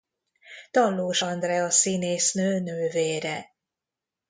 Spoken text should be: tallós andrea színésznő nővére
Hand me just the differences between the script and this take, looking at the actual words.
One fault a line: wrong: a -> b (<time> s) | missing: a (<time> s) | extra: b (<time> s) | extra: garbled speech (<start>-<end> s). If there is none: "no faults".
no faults